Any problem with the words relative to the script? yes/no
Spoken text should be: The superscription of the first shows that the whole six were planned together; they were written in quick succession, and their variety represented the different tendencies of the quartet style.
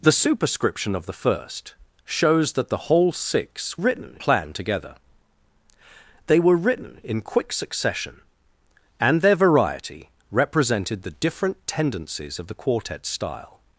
yes